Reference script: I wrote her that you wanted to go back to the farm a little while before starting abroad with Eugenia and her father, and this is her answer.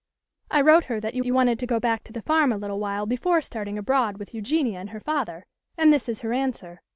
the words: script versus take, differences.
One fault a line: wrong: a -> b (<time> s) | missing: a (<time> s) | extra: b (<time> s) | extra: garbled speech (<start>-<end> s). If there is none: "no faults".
extra: you (1.2 s)